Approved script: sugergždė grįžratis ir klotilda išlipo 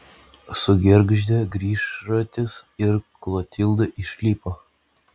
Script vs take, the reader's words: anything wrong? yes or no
no